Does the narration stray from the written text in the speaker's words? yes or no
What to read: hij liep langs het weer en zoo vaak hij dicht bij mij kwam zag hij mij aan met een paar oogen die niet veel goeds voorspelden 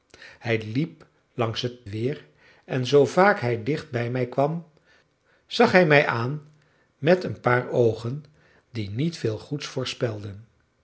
no